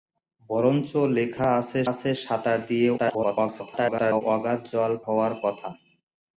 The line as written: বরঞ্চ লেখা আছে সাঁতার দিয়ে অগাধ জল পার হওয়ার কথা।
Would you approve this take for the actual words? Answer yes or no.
no